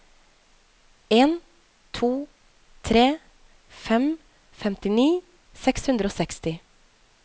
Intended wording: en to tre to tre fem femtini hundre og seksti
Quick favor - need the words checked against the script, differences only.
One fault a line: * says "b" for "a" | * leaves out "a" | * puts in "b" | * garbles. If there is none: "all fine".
* leaves out "to tre"
* puts in "seks"